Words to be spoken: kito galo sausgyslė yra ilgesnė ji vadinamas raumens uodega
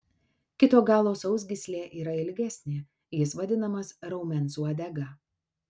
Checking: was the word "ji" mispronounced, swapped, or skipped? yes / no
yes